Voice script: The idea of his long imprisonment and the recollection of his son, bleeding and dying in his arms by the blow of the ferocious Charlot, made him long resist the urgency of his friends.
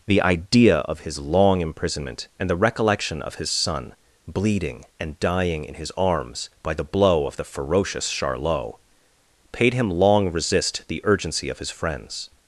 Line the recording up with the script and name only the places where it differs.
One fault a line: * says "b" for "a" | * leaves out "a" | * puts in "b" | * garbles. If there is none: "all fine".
* says "paid" for "made"